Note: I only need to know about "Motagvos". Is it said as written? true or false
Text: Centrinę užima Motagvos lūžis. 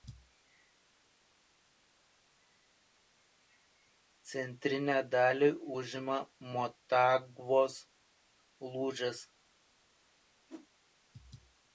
true